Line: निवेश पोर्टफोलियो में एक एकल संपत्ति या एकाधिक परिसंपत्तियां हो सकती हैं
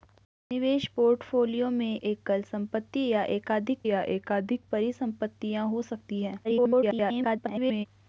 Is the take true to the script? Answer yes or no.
no